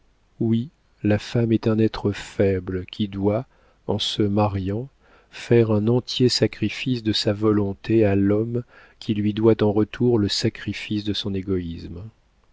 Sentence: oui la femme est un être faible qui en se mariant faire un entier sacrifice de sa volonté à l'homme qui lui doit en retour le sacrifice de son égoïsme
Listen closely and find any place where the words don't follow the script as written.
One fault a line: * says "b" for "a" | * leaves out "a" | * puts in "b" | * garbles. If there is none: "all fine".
* puts in "doit"